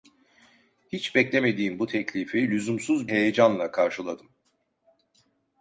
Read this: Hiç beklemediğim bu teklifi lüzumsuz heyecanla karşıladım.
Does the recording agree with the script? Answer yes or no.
yes